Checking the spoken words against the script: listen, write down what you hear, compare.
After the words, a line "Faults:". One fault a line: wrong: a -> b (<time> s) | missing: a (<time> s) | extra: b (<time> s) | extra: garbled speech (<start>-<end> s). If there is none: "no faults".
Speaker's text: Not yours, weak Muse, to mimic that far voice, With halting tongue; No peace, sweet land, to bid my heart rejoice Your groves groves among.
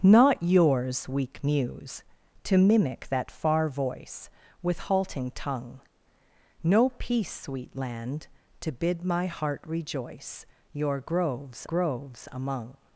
Not yours, weak Muse, to mimic that far voice, With halting tongue; No peace, sweet land, to bid my heart rejoice Your groves groves among.
Faults:
no faults